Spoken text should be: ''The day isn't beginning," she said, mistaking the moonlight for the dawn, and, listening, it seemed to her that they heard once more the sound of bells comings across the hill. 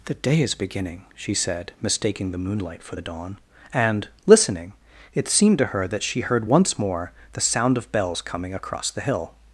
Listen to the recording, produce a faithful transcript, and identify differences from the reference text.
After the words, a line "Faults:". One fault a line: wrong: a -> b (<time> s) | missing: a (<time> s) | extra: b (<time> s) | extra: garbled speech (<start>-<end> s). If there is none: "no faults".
''The day is beginning," she said, mistaking the moonlight for the dawn, and, listening, it seemed to her that she heard once more the sound of bells coming across the hill.
Faults:
wrong: isn't -> is (0.4 s)
wrong: they -> she (6.0 s)
wrong: comings -> coming (8.2 s)